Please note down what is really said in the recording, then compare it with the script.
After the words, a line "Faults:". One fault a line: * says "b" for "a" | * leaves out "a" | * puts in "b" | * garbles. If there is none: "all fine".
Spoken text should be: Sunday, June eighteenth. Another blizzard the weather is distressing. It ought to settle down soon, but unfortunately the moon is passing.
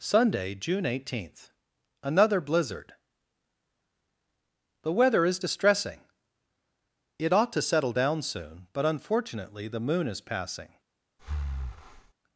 Sunday, June eighteenth. Another blizzard the weather is distressing. It ought to settle down soon, but unfortunately the moon is passing.
Faults:
all fine